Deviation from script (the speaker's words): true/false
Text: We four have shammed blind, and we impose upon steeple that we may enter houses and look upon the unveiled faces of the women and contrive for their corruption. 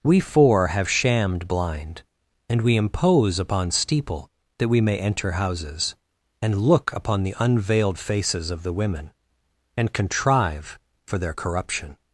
false